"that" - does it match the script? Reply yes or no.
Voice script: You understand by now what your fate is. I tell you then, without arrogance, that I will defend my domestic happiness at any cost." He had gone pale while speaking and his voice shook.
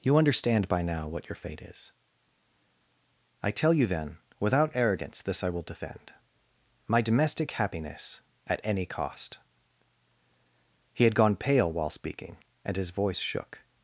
no